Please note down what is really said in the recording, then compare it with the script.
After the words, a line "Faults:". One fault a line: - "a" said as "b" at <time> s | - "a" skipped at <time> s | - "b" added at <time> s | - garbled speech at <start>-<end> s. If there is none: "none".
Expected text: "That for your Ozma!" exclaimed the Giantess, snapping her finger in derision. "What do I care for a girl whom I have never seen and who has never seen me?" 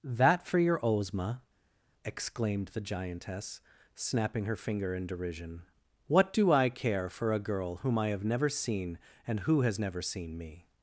"That for your Ozma!" exclaimed the Giantess, snapping her finger in derision. "What do I care for a girl whom I have never seen and who has never seen me?"
Faults:
none